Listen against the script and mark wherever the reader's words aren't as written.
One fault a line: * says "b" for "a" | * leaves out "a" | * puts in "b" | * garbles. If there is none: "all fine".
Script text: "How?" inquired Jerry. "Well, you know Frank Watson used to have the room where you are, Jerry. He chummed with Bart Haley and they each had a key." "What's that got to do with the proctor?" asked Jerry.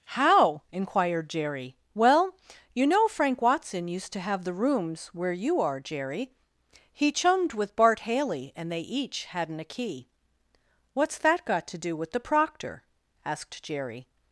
* says "rooms" for "room"
* says "hadn't" for "had"